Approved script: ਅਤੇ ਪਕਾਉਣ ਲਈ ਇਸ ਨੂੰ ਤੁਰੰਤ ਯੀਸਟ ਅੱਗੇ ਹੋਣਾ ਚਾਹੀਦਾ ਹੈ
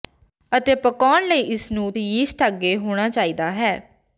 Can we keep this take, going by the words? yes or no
no